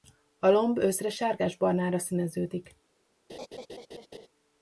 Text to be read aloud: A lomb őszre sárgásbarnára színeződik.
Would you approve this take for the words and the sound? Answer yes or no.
no